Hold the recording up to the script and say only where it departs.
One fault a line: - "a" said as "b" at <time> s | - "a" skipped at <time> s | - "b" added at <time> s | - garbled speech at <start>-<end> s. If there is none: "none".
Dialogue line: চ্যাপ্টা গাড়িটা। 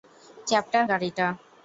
none